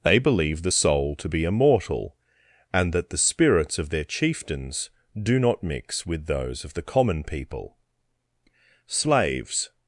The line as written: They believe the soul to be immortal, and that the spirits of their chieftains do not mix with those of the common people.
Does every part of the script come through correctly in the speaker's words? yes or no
no